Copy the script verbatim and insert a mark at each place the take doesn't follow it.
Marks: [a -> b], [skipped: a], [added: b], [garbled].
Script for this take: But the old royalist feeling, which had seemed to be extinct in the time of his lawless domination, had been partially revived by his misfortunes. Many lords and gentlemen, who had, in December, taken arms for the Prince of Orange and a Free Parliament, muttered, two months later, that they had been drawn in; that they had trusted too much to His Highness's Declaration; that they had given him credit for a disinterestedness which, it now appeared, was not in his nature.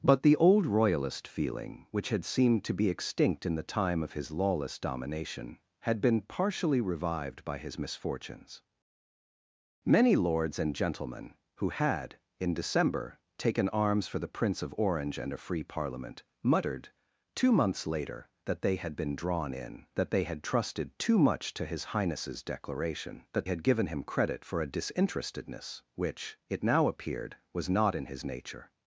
But the old royalist feeling, which had seemed to be extinct in the time of his lawless domination, had been partially revived by his misfortunes. Many lords and gentlemen, who had, in December, taken arms for the Prince of Orange and a Free Parliament, muttered, two months later, that they had been drawn in; that they had trusted too much to His Highness's Declaration; that [skipped: they] had given him credit for a disinterestedness which, it now appeared, was not in his nature.